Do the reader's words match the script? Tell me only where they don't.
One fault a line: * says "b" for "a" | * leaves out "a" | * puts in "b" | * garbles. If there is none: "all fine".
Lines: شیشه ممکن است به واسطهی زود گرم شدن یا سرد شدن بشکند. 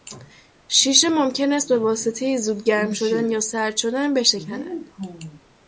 all fine